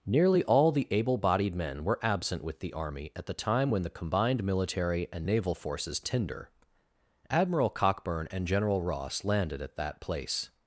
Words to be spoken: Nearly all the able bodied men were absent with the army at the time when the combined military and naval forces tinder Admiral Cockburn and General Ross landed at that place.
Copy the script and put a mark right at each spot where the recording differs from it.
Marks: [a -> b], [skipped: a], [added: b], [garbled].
Nearly all the able bodied men were absent with the army at the time when the combined military and naval forces tinder Admiral Cockburn and General Ross landed at that place.